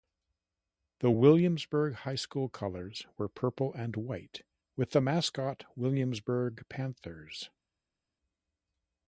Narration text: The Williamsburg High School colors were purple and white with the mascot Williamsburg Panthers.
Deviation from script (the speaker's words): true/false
false